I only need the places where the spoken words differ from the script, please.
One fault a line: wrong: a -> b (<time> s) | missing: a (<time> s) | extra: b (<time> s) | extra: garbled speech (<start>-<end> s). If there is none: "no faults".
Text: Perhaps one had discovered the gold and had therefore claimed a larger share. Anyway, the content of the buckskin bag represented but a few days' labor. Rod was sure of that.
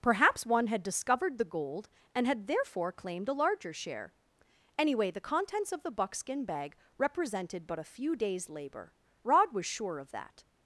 wrong: content -> contents (5.2 s)